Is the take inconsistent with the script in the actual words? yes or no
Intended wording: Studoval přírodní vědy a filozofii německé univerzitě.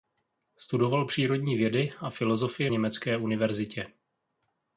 no